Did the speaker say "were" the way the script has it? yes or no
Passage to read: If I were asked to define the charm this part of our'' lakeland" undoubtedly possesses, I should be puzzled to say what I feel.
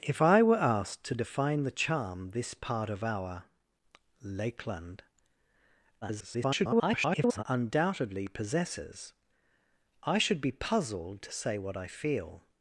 yes